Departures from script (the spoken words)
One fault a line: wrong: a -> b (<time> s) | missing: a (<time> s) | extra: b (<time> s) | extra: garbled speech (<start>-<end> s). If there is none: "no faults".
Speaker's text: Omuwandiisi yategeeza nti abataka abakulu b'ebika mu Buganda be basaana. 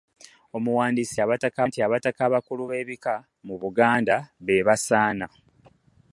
wrong: yategeeza -> abataka (1.2 s)